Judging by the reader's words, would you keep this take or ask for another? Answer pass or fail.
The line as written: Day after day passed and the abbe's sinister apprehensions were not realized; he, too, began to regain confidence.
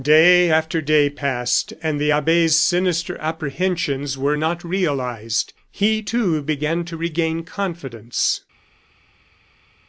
pass